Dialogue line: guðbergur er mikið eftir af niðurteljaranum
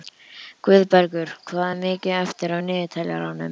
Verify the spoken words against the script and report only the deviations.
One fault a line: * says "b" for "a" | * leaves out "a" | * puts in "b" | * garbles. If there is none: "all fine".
* puts in "hvað"